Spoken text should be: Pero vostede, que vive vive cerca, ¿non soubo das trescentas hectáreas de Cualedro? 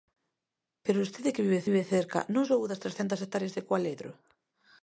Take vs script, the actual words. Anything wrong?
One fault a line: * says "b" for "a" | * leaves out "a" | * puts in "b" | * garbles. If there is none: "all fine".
all fine